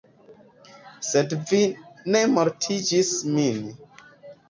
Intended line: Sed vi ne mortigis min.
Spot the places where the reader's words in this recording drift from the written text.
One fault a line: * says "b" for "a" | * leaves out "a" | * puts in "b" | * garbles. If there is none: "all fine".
all fine